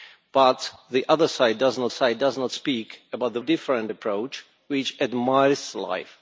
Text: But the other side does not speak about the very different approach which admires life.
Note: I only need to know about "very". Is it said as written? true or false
false